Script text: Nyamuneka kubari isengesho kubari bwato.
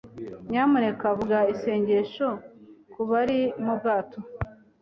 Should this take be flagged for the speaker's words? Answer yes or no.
yes